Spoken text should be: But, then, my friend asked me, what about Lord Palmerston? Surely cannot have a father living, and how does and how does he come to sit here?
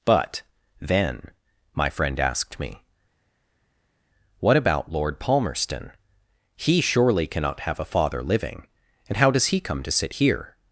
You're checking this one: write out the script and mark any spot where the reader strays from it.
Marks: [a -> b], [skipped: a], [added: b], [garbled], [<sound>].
But, then, my friend asked me, what about Lord Palmerston? [added: He] Surely cannot have a father living, and how does [skipped: and how does] he come to sit here?